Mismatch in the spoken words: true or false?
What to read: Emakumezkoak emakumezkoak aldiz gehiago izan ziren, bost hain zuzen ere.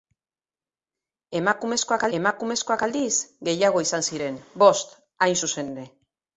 false